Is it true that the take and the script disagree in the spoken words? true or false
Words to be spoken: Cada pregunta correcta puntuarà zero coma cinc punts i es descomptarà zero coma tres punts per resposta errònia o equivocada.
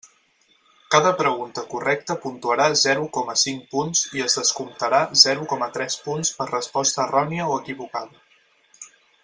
false